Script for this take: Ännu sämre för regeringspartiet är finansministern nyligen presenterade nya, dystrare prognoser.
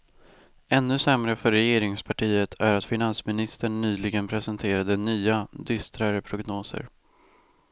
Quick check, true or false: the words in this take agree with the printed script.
false